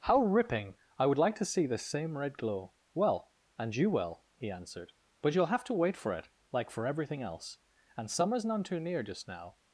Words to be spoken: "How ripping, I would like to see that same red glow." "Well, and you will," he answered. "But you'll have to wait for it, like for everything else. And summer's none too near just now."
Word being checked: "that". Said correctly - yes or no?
no